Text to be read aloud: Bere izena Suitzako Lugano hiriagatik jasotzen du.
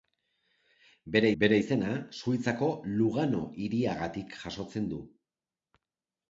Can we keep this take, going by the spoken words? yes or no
no